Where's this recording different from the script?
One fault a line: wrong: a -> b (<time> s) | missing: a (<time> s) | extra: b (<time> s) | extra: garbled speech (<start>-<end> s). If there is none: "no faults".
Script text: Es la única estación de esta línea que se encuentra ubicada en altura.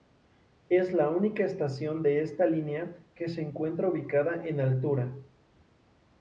no faults